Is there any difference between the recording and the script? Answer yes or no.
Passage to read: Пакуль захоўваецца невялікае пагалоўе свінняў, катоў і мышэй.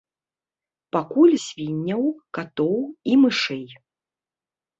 yes